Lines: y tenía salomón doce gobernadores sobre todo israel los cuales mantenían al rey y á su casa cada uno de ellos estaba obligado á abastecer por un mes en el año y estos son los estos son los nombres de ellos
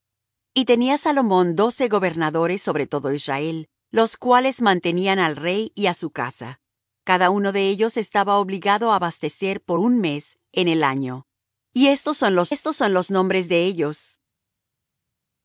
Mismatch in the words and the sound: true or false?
false